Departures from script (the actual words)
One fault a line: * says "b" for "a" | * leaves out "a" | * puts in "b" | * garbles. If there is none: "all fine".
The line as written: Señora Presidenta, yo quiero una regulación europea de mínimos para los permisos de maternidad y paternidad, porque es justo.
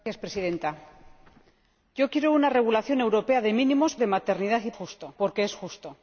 * leaves out "para los permisos"
* says "justo" for "paternidad"